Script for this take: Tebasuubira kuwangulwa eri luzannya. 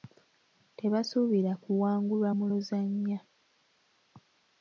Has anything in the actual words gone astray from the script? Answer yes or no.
yes